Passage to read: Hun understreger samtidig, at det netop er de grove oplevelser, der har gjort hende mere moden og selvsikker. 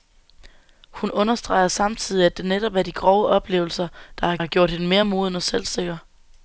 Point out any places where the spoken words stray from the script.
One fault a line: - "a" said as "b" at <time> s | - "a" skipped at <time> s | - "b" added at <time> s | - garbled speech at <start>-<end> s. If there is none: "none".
- "har" added at 4.4 s